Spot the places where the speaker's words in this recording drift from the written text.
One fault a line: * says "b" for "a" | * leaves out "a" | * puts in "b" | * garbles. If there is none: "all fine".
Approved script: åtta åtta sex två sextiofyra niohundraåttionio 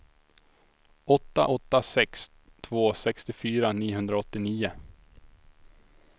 all fine